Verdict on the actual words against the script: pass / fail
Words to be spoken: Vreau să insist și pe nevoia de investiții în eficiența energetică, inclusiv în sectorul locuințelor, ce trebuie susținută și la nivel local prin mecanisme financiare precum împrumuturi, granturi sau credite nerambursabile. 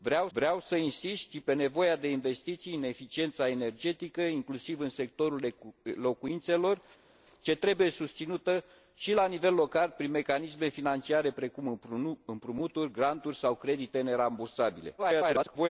fail